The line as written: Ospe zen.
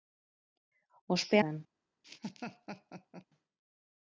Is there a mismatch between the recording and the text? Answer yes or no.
no